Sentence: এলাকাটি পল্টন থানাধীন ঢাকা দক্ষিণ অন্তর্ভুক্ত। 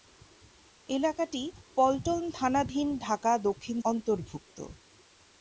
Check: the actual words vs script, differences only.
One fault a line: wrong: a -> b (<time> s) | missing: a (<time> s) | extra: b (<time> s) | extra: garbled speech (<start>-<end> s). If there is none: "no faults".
no faults